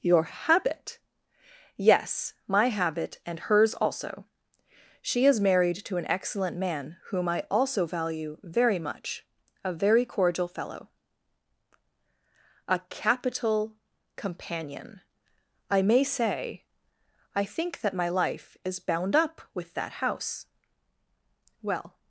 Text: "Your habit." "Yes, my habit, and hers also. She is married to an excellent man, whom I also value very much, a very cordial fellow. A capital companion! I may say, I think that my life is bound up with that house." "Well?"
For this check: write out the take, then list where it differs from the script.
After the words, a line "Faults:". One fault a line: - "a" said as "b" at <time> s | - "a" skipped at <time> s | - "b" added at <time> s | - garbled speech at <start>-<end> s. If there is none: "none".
"Your habit." "Yes, my habit, and hers also. She is married to an excellent man, whom I also value very much, a very cordial fellow. A capital companion! I may say, I think that my life is bound up with that house." "Well?"
Faults:
none